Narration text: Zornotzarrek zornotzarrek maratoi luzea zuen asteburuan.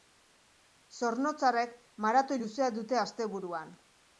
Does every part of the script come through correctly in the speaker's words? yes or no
no